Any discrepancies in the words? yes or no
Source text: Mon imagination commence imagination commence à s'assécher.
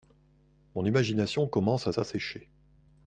yes